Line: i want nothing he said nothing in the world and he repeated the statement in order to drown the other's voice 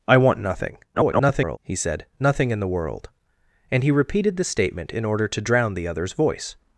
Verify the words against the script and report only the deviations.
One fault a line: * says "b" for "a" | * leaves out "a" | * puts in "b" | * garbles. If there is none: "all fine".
* garbles